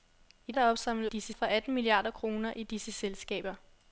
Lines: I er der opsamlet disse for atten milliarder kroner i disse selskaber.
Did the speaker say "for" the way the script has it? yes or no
yes